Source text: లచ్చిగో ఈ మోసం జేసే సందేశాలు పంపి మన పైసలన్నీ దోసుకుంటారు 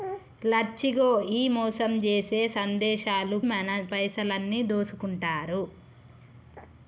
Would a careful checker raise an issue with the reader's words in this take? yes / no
yes